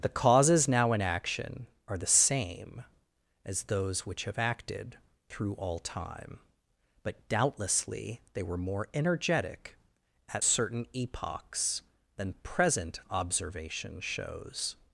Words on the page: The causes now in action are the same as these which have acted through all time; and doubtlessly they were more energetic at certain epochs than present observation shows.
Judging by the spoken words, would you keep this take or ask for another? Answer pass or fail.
fail